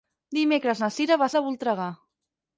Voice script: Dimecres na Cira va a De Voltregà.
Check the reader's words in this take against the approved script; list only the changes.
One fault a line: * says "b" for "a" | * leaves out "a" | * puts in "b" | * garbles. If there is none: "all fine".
all fine